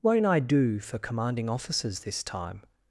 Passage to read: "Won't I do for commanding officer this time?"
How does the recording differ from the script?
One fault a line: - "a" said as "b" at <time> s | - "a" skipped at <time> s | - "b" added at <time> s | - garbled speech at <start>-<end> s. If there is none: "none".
- "officer" said as "officers" at 1.5 s